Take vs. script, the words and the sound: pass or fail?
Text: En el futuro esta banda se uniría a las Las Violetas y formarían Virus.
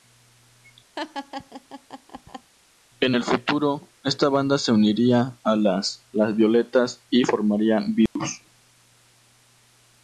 fail